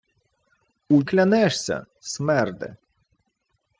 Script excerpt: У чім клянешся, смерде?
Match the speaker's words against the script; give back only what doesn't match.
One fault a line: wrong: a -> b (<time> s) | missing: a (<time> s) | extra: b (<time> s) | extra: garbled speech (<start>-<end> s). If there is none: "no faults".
missing: чім (1.0 s)